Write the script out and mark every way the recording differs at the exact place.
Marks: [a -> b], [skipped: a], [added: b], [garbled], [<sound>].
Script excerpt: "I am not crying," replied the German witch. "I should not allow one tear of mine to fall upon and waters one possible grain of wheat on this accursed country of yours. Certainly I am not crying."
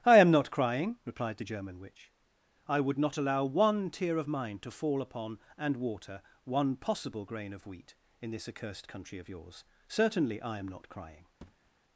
"I am not crying," replied the German witch. "I [should -> would] not allow one tear of mine to fall upon and [waters -> water] one possible grain of wheat [on -> in] this accursed country of yours. Certainly I am not crying." [thud]